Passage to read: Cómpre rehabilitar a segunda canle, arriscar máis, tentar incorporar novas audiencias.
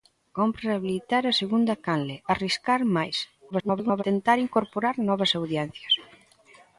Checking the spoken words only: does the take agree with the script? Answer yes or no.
no